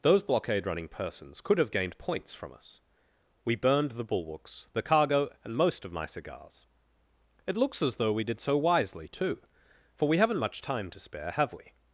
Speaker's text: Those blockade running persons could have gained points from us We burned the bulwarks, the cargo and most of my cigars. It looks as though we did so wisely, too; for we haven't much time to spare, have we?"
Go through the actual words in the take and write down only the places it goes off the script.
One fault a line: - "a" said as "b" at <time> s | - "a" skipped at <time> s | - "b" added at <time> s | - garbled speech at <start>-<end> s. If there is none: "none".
none